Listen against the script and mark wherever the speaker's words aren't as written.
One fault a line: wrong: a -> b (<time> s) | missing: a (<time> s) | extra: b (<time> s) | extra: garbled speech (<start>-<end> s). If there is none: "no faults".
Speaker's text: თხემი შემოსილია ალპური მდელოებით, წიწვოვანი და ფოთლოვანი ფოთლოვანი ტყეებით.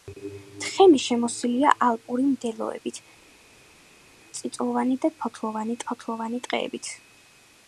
no faults